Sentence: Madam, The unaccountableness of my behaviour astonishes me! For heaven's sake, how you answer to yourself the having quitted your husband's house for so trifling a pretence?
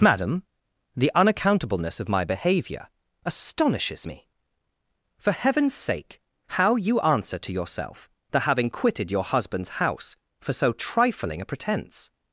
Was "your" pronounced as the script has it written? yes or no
yes